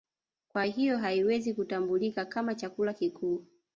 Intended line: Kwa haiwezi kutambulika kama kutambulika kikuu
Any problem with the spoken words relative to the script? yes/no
yes